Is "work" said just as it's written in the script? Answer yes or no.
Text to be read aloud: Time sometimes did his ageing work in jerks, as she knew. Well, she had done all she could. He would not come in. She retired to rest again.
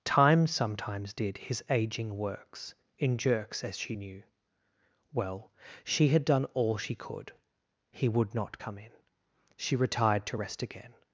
no